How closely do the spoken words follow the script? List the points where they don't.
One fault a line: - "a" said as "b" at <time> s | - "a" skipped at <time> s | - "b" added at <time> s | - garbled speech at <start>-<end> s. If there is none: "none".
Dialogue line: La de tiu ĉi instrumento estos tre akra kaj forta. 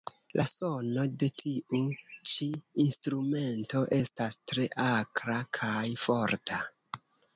- "sono" added at 0.5 s
- "estos" said as "estas" at 4.0 s